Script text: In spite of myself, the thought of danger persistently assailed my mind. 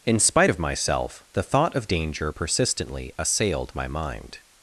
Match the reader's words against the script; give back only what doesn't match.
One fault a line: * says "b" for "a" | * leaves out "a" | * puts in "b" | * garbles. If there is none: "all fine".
all fine